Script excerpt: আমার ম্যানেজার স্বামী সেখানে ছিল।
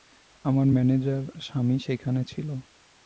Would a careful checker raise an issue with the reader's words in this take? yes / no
no